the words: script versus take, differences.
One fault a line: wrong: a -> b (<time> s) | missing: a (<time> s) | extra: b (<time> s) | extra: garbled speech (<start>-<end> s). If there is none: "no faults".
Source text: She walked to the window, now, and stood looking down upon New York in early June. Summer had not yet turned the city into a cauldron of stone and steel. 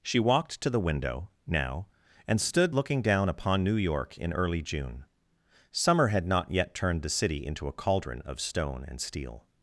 no faults